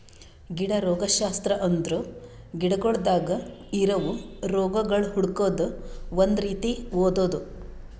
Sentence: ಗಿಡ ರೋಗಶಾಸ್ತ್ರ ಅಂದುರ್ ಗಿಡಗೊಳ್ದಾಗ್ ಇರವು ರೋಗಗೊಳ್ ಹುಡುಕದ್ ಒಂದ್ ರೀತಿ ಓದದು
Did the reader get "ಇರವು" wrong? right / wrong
right